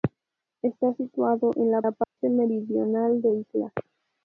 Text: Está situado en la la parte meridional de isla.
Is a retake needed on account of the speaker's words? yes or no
no